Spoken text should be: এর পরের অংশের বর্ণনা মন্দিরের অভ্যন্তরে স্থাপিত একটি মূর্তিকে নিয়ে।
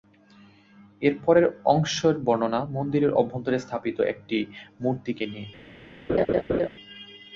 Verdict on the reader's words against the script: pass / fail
pass